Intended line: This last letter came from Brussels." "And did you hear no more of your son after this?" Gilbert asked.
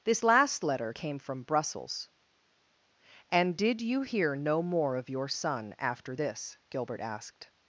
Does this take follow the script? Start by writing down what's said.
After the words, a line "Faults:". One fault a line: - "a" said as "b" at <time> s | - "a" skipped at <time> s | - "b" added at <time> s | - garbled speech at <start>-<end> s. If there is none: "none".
This last letter came from Brussels." "And did you hear no more of your son after this?" Gilbert asked.
Faults:
none